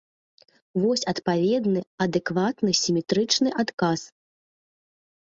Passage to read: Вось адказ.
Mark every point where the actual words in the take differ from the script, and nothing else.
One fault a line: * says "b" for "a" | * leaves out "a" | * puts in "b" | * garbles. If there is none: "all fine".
* puts in "адпаведны адэкватны сіметрычны"